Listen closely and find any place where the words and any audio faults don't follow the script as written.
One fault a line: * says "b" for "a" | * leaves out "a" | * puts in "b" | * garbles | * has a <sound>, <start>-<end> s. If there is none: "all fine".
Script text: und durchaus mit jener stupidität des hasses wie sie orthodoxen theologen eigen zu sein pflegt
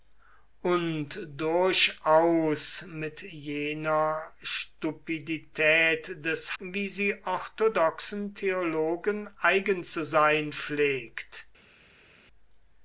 * leaves out "hasses"